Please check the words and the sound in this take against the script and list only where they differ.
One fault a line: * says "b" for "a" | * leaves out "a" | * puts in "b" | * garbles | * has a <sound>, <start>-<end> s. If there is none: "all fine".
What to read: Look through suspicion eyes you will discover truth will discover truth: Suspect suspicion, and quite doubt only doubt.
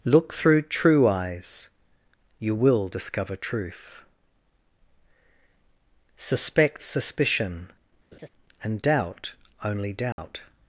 * says "true" for "suspicion"
* leaves out "will discover truth"
* has a laugh, 8.1-8.3 s
* leaves out "quite"
* has a dropout, 10.1-10.2 s